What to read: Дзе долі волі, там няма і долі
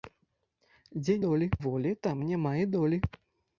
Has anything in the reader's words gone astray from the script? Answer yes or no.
no